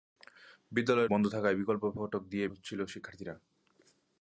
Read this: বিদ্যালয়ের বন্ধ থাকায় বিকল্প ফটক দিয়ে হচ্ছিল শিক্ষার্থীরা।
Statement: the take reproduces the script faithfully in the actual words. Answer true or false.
true